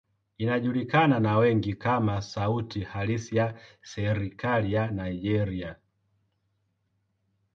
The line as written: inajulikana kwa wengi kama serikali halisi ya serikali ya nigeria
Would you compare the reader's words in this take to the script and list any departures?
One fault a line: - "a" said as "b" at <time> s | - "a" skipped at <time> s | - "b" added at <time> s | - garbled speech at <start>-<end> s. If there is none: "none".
- "kwa" said as "na" at 1.2 s
- "serikali" said as "sauti" at 2.2 s